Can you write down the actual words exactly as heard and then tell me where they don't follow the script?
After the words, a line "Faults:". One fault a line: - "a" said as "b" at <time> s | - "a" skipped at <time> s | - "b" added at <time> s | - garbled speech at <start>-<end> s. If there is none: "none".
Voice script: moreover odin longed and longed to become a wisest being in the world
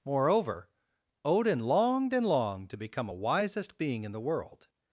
moreover odin longed and longed to become a wisest being in the world
Faults:
none